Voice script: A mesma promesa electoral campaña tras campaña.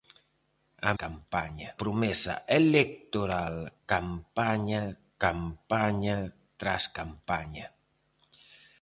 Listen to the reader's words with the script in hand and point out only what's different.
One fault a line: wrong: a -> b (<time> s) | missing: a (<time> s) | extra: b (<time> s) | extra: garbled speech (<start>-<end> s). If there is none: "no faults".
wrong: mesma -> campaña (1.0 s)
extra: campaña (5.2 s)